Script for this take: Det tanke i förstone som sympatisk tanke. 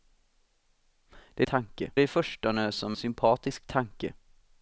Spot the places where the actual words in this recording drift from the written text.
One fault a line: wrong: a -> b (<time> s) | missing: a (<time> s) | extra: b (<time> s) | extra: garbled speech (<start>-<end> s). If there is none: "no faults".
no faults